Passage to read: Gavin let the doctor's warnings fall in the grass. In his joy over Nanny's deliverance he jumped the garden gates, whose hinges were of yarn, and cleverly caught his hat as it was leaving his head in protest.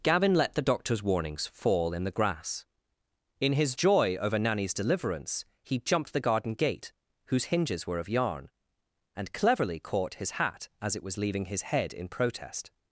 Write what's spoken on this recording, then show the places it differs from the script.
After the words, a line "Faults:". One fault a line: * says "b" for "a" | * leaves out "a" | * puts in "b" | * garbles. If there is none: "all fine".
Gavin let the doctor's warnings fall in the grass. In his joy over Nanny's deliverance he jumped the garden gate, whose hinges were of yarn, and cleverly caught his hat as it was leaving his head in protest.
Faults:
* says "gate" for "gates"